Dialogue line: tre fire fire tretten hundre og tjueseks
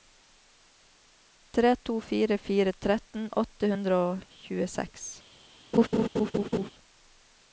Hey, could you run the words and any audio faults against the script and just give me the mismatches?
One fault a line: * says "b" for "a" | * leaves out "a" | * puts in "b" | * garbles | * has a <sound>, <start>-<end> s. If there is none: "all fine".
* puts in "to"
* puts in "åtte"
* has a laugh, 5.7-6.7 s